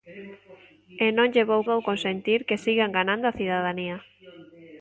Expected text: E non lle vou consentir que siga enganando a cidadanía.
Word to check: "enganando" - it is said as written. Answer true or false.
true